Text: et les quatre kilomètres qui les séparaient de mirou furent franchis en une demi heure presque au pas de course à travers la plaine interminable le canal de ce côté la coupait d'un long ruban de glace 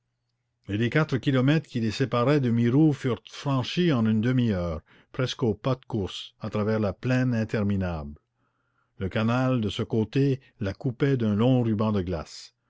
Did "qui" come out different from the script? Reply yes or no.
no